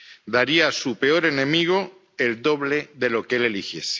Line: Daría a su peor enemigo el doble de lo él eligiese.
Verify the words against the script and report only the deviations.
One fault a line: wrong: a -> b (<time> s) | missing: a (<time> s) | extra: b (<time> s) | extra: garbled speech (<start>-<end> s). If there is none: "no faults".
extra: que (3.3 s)